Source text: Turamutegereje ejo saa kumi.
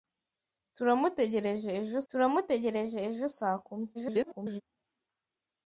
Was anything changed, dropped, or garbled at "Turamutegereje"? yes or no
no